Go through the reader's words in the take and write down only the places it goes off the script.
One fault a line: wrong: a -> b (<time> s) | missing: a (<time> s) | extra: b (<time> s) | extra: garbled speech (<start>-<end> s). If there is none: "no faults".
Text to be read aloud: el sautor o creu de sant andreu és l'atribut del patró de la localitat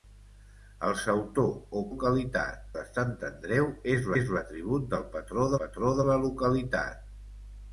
wrong: creu -> localitat (1.9 s)
extra: és (4.2 s)
extra: patró (5.6 s)